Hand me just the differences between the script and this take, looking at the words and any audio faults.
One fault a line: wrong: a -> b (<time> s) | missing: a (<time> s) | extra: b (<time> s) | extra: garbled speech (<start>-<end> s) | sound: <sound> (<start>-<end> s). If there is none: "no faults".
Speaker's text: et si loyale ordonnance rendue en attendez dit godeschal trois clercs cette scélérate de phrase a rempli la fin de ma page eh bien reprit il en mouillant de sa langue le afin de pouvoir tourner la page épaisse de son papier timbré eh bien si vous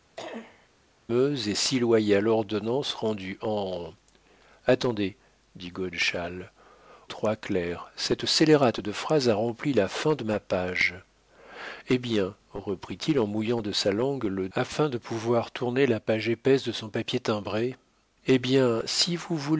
sound: cough (0.2-0.7 s)